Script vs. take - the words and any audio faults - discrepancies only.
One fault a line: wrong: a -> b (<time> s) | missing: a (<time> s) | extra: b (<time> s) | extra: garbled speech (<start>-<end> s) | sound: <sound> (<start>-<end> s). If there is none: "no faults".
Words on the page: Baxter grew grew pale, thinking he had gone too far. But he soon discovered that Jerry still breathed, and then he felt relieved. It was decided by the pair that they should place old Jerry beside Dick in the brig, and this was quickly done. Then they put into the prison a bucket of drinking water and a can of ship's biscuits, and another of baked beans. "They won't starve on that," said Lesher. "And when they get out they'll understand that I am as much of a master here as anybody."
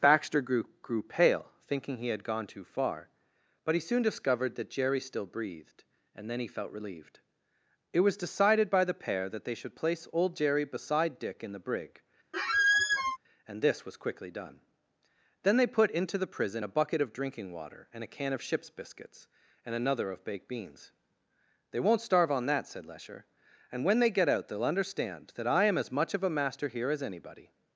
sound: squeak (12.3-13.2 s)